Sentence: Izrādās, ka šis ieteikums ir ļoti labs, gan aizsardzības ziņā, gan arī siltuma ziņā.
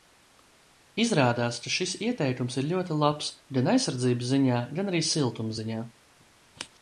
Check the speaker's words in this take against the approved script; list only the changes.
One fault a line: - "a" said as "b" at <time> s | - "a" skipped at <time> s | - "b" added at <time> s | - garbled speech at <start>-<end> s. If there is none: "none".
none